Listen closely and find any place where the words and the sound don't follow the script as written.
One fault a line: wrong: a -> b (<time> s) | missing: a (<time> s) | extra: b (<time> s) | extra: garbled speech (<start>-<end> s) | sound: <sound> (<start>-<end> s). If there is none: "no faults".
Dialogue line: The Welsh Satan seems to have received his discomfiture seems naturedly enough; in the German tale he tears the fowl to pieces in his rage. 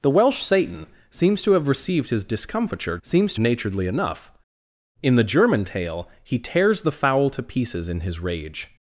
no faults